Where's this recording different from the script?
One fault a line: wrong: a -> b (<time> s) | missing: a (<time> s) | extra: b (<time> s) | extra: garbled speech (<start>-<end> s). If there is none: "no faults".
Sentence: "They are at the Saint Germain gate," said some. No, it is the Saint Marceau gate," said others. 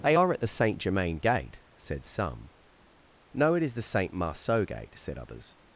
no faults